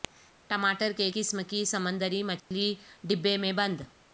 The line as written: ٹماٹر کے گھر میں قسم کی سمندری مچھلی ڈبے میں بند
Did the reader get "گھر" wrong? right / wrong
wrong